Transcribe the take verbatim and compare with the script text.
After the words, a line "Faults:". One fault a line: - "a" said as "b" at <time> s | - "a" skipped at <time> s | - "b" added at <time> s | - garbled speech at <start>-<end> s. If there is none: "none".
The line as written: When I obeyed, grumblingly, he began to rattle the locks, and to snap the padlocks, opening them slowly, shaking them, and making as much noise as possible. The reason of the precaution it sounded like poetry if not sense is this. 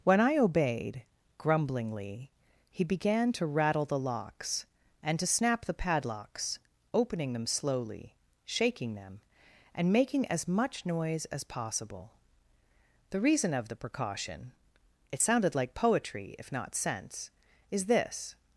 When I obeyed, grumblingly, he began to rattle the locks, and to snap the padlocks, opening them slowly, shaking them, and making as much noise as possible. The reason of the precaution it sounded like poetry if not sense is this.
Faults:
none